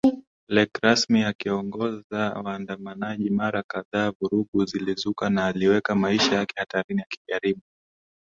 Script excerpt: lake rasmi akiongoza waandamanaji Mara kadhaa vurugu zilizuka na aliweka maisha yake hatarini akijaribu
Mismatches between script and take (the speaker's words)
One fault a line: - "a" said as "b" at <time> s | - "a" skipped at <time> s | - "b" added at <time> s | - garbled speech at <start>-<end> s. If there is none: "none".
none